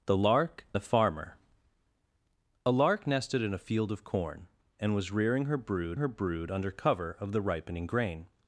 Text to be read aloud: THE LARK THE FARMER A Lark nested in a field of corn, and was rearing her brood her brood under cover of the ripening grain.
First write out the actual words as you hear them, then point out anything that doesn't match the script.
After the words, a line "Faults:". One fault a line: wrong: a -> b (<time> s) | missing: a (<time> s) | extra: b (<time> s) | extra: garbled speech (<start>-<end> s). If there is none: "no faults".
THE LARK THE FARMER A Lark nested in a field of corn, and was rearing her brood her brood under cover of the ripening grain.
Faults:
no faults